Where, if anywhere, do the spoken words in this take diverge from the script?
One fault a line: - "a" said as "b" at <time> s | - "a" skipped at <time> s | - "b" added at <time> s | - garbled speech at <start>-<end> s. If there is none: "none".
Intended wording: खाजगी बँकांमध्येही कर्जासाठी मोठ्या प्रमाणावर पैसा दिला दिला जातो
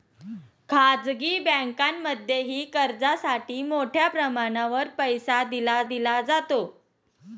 none